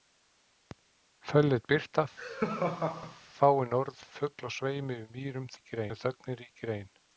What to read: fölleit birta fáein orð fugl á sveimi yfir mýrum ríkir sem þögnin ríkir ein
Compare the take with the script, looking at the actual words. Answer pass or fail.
pass